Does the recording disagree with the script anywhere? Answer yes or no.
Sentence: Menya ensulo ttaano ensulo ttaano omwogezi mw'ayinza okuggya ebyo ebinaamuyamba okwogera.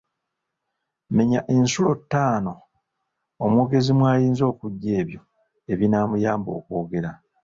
yes